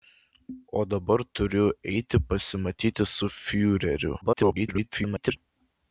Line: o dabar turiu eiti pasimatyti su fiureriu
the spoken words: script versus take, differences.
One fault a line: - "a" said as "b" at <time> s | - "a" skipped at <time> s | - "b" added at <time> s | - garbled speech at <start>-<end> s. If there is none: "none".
- garbled speech at 4.2-5.4 s